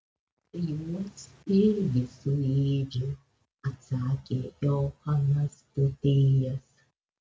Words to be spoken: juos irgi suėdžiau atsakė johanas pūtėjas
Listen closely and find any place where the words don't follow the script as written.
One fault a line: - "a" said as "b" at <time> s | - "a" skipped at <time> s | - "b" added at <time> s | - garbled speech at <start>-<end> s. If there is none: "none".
none